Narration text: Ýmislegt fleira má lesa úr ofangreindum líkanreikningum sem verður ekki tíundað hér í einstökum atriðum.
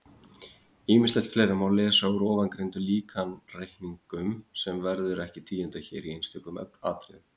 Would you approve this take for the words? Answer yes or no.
yes